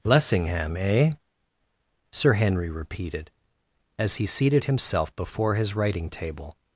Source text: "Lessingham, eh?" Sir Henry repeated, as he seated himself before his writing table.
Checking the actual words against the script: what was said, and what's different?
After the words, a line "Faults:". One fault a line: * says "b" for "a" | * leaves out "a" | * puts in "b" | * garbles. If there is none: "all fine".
"Lessingham, eh?" Sir Henry repeated, as he seated himself before his writing table.
Faults:
all fine